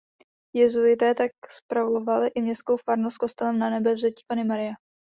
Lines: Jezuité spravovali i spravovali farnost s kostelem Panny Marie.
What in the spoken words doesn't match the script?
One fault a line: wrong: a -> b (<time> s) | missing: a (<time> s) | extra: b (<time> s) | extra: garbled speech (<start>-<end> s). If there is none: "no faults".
extra: tak (1.1 s)
wrong: spravovali -> městskou (2.4 s)
extra: Nanebevzetí (3.6 s)